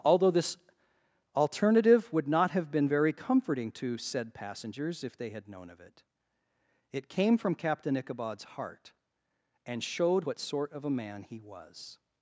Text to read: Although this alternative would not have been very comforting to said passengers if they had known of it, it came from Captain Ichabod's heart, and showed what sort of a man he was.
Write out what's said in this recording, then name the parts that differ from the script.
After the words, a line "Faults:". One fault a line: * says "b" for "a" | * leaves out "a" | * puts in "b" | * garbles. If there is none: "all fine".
Although this alternative would not have been very comforting to said passengers if they had known of it, it came from Captain Ichabod's heart, and showed what sort of a man he was.
Faults:
all fine